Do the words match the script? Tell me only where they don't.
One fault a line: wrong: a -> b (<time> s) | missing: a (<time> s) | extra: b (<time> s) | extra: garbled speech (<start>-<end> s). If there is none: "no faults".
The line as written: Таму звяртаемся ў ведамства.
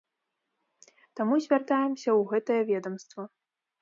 extra: гэтае (2.3 s)